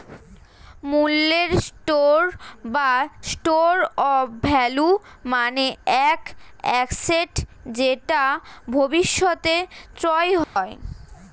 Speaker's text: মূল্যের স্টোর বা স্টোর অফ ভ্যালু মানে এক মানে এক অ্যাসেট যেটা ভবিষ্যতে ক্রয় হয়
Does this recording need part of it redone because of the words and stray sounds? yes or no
yes